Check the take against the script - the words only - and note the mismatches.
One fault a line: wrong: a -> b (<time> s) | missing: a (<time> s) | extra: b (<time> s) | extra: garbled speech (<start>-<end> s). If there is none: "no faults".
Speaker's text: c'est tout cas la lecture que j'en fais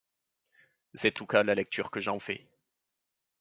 no faults